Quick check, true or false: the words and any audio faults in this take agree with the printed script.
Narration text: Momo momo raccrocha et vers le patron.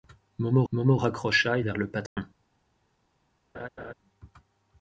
false